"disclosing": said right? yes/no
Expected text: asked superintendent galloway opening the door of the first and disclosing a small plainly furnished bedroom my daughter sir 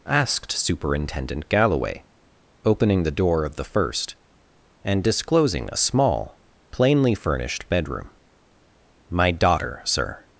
yes